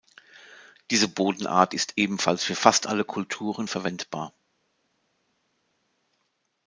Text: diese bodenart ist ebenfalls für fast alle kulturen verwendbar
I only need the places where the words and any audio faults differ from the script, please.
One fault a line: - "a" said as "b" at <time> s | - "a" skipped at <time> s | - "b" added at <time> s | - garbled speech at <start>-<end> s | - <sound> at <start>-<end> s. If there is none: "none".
none